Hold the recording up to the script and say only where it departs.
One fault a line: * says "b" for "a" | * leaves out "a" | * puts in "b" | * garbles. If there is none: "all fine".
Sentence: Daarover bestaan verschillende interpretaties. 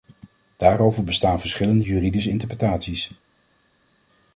* puts in "juridische"